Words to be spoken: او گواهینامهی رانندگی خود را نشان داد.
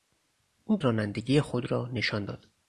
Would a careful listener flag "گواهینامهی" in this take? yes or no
yes